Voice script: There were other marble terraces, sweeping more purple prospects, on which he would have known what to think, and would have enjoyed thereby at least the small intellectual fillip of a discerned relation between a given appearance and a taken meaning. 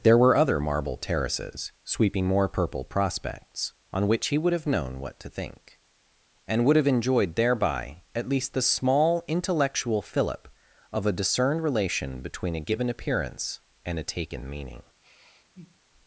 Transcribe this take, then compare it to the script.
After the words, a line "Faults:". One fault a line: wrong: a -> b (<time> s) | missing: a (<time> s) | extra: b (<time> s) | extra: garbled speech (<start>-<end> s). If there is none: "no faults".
There were other marble terraces, sweeping more purple prospects, on which he would have known what to think, and would have enjoyed thereby at least the small intellectual fillip of a discerned relation between a given appearance and a taken meaning.
Faults:
no faults